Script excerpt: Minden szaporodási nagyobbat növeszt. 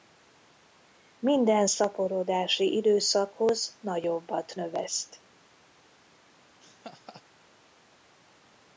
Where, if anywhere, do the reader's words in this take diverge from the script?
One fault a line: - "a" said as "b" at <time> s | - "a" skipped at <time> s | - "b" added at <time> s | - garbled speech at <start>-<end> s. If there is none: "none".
- "időszakhoz" added at 2.8 s